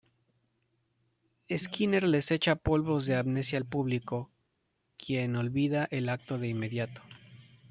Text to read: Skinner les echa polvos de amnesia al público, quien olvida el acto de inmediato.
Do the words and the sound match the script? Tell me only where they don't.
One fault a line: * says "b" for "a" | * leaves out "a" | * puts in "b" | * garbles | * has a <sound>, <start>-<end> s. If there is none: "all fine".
all fine